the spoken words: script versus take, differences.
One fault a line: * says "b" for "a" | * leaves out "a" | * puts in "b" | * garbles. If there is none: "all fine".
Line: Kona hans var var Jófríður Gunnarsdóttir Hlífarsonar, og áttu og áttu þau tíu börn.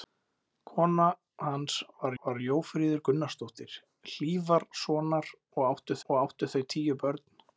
all fine